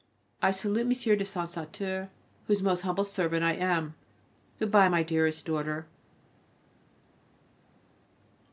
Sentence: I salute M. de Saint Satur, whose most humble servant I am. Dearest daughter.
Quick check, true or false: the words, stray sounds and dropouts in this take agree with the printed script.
false